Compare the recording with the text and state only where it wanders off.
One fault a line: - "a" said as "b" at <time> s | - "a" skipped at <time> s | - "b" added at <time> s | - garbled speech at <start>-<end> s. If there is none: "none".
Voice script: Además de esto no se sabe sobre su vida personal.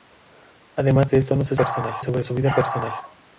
- "sabe" said as "personal" at 1.6 s